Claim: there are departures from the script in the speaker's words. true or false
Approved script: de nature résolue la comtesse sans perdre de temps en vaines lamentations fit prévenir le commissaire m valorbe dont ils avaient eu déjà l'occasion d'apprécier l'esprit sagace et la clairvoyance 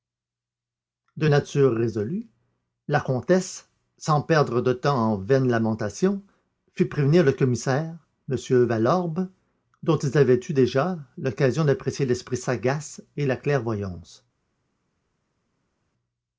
false